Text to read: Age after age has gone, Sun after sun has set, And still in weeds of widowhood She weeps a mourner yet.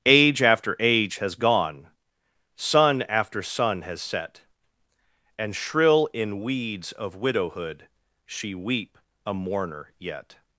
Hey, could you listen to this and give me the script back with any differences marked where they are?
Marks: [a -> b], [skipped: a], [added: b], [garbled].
Age after age has gone, Sun after sun has set, And [still -> shrill] in weeds of widowhood She [weeps -> weep] a mourner yet.